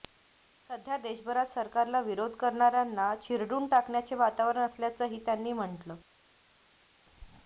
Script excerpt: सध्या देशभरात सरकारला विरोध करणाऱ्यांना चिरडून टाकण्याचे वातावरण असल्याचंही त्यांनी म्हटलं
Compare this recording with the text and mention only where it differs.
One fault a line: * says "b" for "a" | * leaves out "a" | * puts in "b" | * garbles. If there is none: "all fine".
all fine